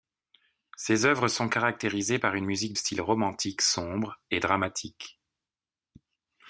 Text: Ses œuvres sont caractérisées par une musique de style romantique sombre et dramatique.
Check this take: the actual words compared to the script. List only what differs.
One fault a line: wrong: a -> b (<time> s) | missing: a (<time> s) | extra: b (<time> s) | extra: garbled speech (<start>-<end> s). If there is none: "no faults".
missing: de (2.7 s)